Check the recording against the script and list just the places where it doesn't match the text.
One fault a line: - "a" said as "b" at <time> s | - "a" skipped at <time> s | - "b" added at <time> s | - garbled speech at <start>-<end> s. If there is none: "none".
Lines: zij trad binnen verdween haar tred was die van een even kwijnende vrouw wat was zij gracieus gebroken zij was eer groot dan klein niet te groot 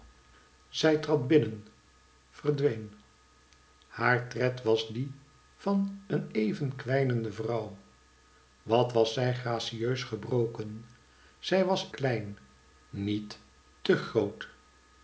- "eer groot dan" skipped at 11.9 s